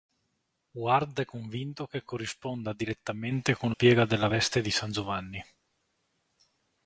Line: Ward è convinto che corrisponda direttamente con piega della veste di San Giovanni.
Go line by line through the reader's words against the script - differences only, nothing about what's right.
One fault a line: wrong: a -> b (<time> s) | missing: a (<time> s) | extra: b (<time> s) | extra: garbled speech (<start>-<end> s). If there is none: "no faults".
no faults